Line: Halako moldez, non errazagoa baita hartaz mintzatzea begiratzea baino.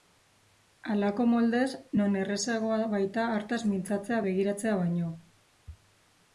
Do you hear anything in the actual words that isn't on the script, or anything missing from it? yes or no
no